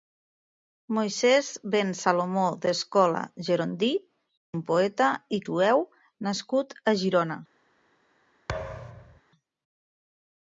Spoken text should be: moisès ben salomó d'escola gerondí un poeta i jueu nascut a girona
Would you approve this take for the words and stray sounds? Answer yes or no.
no